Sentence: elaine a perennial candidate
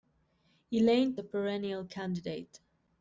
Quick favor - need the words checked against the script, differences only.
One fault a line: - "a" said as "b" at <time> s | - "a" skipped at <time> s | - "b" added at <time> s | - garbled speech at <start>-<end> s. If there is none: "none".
none